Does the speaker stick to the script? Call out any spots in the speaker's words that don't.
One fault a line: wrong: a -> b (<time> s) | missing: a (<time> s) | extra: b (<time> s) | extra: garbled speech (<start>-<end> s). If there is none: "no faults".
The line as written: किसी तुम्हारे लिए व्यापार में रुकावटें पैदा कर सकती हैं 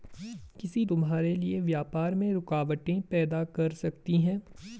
no faults